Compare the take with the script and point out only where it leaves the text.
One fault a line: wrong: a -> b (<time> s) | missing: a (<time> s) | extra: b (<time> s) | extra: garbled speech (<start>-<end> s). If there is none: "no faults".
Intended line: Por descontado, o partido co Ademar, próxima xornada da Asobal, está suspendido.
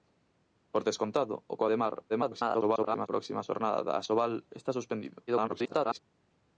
missing: partido (1.6 s)
extra: garbled speech (2.1-3.1 s)
extra: garbled speech (5.3-6.0 s)